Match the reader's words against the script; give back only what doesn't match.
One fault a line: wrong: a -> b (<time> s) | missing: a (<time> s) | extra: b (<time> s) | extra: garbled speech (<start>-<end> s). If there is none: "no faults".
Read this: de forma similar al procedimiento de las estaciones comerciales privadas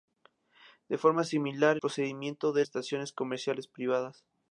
missing: al (1.8 s)
missing: las (2.7 s)